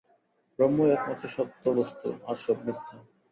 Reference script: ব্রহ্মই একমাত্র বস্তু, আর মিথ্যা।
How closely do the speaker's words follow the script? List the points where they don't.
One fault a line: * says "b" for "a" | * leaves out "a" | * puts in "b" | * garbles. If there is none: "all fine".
* puts in "সত্য"
* puts in "সব"